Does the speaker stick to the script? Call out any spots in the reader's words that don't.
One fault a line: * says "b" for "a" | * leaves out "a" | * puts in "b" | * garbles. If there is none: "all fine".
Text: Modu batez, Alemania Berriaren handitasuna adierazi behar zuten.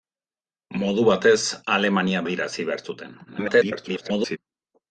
* leaves out "Berriaren handitasuna"
* garbles